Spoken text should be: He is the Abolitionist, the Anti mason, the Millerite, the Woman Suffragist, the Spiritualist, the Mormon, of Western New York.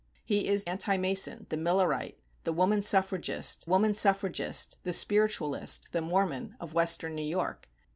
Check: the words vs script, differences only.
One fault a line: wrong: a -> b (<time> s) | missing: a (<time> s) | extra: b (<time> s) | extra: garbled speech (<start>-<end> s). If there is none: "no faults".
missing: the Abolitionist the (0.7 s)
extra: Woman Suffragist (3.7 s)